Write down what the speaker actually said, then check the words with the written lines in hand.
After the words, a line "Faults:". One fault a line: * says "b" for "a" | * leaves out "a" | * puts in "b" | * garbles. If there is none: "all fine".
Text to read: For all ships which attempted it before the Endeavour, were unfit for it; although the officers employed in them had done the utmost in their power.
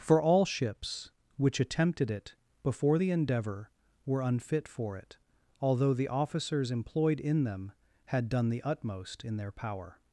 For all ships which attempted it before the Endeavour, were unfit for it; although the officers employed in them had done the utmost in their power.
Faults:
all fine